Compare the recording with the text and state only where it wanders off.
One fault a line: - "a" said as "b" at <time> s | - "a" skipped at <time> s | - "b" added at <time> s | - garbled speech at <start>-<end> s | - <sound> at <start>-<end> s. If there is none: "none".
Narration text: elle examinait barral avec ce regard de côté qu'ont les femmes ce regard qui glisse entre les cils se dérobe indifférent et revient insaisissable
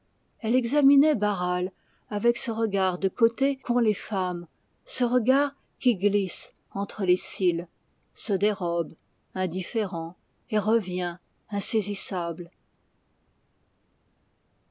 none